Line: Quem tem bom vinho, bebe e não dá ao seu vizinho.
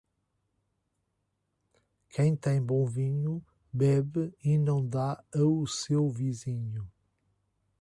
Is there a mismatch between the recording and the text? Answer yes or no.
no